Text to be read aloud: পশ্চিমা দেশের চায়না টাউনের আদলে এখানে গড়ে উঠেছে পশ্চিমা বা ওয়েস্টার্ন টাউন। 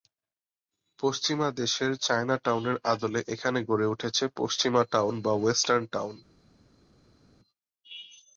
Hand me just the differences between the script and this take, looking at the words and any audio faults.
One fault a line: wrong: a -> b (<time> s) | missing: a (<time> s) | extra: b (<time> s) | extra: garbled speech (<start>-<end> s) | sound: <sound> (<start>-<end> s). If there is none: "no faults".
extra: টাউন (4.9 s)